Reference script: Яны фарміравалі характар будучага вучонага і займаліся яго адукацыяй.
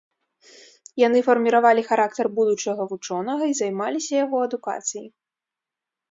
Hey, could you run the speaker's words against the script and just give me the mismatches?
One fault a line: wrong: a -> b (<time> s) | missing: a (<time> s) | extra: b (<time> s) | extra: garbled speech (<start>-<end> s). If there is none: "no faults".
no faults